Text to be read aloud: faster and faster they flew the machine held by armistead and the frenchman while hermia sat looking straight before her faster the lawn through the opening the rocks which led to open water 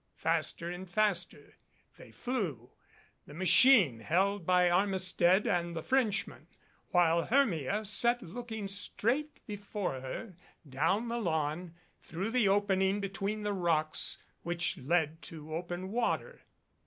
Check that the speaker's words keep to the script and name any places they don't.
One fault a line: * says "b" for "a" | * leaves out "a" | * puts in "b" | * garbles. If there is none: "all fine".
* says "down" for "faster"
* puts in "between"